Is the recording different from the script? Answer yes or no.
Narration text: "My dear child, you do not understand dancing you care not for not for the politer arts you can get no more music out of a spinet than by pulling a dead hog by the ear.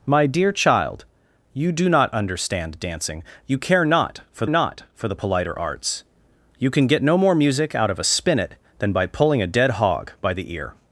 no